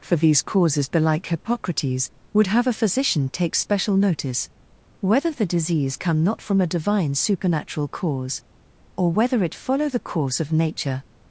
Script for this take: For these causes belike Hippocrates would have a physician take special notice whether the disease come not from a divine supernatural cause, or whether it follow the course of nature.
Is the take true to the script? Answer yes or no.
yes